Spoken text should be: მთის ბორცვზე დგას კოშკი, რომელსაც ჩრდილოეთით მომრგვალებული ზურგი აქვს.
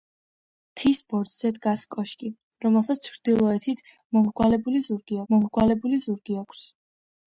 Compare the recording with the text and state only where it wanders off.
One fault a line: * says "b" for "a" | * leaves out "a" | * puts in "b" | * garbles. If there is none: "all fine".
* puts in "მომრგვალებული ზურგი"